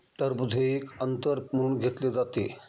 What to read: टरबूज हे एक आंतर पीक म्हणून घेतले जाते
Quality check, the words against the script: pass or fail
fail